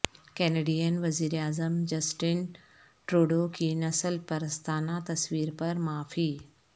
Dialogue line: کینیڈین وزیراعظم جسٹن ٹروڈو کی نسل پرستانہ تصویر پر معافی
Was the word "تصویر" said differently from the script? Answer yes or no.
no